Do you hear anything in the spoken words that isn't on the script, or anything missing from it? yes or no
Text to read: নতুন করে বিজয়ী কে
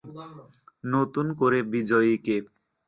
no